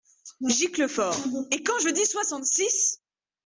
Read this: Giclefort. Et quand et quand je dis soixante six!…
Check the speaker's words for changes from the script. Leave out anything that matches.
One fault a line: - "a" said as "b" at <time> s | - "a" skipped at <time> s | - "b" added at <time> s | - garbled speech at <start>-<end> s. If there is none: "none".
- "et quand" skipped at 1.8 s